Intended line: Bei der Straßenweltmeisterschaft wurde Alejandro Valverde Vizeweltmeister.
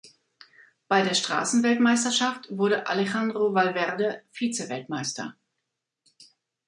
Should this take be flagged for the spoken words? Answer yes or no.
no